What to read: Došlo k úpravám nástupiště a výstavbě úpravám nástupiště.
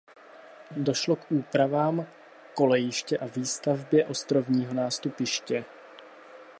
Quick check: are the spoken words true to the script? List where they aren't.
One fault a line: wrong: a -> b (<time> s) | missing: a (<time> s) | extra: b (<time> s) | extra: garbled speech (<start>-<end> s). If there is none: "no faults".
wrong: nástupiště -> kolejiště (2.5 s)
wrong: úpravám -> ostrovního (4.0 s)